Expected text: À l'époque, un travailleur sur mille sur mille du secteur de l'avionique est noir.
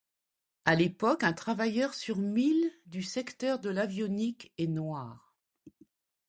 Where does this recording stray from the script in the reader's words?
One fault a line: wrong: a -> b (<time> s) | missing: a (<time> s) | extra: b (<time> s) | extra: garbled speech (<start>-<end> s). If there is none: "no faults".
missing: sur mille (2.7 s)